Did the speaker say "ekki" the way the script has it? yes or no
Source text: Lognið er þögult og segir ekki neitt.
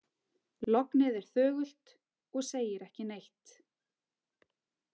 yes